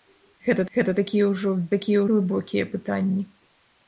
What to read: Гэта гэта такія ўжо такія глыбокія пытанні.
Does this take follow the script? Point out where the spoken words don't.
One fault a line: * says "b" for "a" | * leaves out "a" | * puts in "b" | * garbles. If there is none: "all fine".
all fine